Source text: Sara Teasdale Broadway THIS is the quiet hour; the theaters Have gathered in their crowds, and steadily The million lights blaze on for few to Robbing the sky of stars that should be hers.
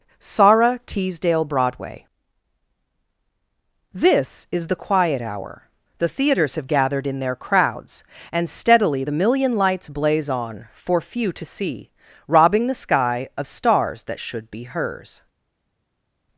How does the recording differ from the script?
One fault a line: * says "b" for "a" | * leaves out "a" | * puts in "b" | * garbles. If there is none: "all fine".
* puts in "see"